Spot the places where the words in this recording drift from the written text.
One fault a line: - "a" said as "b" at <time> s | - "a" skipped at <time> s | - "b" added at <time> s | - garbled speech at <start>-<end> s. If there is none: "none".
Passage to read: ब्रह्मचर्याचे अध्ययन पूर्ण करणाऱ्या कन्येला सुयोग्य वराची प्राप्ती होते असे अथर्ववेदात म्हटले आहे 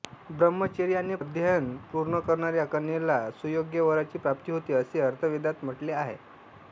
none